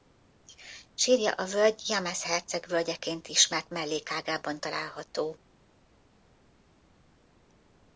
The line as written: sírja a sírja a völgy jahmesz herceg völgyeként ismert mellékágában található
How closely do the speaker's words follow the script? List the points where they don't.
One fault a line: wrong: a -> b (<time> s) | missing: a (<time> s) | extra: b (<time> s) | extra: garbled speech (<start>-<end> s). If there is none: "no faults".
missing: sírja a (1.4 s)